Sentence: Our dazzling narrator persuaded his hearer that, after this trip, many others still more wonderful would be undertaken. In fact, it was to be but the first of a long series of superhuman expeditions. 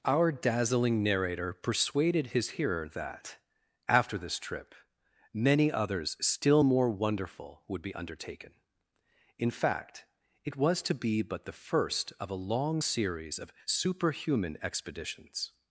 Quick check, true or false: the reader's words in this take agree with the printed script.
true